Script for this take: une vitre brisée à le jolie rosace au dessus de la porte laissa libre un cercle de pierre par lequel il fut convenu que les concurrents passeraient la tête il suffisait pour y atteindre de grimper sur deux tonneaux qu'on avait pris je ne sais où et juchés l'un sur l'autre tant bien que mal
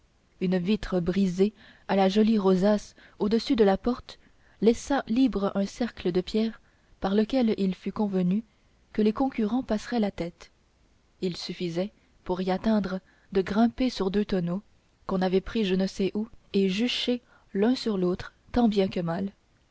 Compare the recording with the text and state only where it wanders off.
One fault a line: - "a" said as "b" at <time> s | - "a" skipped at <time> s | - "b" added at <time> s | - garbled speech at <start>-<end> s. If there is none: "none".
- "le" said as "la" at 1.9 s